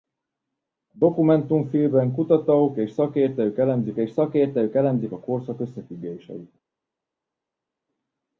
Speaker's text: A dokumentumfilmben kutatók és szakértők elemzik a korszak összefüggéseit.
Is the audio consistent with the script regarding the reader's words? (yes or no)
no